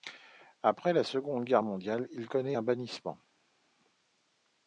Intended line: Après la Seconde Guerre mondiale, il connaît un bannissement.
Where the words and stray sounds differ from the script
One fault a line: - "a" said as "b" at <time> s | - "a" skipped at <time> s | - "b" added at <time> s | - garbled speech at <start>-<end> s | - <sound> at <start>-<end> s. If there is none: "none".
none